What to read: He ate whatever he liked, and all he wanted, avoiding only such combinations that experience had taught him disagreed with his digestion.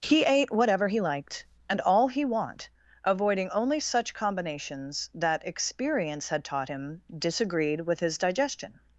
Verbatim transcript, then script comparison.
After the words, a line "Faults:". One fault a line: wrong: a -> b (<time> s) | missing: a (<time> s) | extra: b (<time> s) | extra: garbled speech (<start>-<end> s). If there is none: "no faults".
He ate whatever he liked, and all he want, avoiding only such combinations that experience had taught him disagreed with his digestion.
Faults:
wrong: wanted -> want (2.2 s)